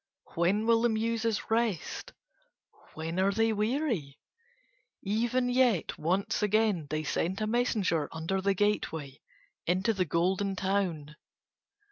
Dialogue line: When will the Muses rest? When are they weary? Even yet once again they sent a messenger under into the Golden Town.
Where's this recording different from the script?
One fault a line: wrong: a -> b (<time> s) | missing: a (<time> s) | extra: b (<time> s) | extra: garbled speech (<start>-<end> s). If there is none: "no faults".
extra: the gateway (8.4 s)